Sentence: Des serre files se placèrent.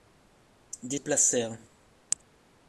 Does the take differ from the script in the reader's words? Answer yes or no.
yes